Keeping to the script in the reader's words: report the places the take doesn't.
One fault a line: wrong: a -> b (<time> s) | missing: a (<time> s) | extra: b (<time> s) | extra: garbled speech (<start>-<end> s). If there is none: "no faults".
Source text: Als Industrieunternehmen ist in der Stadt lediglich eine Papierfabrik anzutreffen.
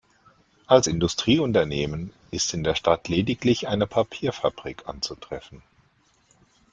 no faults